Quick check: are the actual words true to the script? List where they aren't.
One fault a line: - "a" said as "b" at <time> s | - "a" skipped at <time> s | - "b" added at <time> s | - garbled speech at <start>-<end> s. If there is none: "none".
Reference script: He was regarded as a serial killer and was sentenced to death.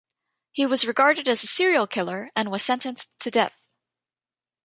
none